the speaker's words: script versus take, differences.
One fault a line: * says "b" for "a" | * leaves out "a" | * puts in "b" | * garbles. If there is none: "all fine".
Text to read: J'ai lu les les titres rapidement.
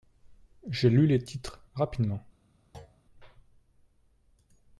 * leaves out "les"